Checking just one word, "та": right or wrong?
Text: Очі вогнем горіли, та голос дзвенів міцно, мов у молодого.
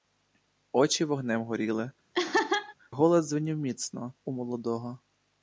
wrong